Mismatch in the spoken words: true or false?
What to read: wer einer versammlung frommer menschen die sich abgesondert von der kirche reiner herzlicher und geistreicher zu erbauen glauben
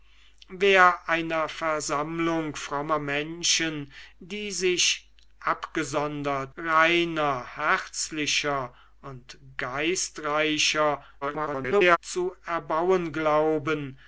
true